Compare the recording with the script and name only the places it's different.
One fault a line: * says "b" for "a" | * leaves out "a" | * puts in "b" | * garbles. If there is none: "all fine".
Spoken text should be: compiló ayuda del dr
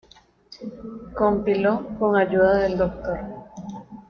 * puts in "con"